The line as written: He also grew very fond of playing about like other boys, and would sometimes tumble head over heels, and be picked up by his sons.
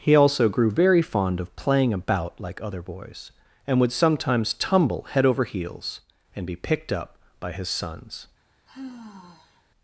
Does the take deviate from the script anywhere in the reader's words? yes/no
no